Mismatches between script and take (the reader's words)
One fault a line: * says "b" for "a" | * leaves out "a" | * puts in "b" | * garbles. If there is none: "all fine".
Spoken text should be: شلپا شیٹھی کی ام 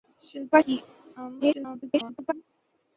* leaves out "شیٹھی"
* garbles